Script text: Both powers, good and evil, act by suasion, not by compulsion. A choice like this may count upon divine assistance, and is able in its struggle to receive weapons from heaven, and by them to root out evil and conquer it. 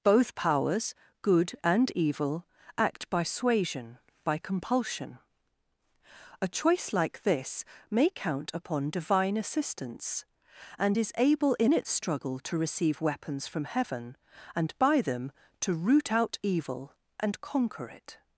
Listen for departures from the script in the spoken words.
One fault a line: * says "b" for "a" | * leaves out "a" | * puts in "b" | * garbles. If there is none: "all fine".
* leaves out "not"